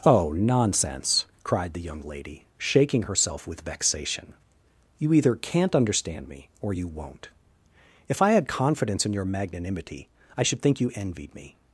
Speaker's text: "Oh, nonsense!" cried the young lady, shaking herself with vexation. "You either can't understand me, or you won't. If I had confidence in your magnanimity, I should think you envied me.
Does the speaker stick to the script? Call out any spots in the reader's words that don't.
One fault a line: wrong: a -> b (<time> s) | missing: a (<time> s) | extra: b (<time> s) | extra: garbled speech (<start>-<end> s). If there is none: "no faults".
no faults